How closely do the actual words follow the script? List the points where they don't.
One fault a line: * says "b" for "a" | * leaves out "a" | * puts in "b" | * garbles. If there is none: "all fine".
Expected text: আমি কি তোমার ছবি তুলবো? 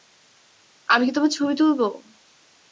all fine